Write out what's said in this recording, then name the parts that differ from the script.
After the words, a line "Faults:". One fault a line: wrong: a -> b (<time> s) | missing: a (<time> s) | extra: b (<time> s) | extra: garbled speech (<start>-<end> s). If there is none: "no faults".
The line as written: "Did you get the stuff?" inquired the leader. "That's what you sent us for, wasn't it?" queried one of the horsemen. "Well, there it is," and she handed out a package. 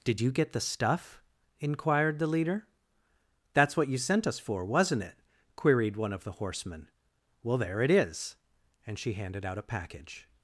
"Did you get the stuff?" inquired the leader. "That's what you sent us for, wasn't it?" queried one of the horsemen. "Well, there it is," and she handed out a package.
Faults:
no faults